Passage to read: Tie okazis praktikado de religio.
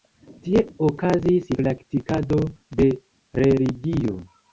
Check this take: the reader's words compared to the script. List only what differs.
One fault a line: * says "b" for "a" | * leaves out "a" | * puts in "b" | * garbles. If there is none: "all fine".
all fine